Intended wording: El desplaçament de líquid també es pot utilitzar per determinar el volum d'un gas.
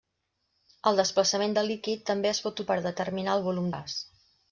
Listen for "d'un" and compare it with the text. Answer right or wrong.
wrong